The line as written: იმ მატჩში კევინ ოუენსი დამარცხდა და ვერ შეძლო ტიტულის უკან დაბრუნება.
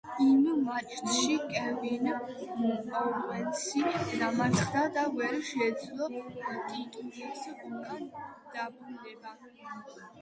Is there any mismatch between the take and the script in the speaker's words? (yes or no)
no